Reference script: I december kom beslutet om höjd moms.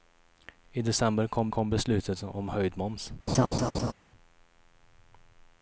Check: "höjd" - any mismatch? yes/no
no